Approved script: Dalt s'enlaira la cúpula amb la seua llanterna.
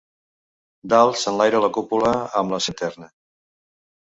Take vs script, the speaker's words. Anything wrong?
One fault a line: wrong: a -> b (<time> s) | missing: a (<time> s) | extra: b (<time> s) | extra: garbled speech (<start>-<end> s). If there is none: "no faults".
missing: seua (2.6 s)